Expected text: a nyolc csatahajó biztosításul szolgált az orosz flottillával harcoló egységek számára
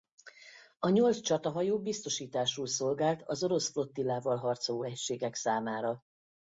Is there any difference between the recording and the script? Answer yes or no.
no